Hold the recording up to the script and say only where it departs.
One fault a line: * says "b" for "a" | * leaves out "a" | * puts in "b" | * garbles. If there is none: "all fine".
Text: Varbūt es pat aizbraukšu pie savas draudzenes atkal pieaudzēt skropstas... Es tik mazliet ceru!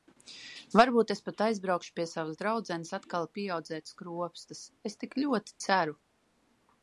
* says "ļoti" for "mazliet"